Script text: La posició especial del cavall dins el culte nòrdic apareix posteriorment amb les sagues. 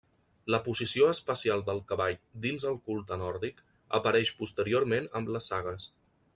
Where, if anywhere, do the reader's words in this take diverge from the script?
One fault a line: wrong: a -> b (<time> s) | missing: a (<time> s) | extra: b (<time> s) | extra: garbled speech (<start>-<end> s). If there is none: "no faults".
no faults